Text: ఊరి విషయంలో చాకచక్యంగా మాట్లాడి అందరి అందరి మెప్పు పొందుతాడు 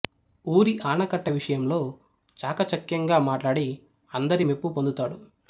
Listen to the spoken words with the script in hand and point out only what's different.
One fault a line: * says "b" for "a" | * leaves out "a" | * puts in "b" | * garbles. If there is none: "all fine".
* puts in "ఆనకట్ట"
* leaves out "అందరి"